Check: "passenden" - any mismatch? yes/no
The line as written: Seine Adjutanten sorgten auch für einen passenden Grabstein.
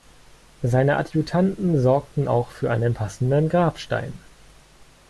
no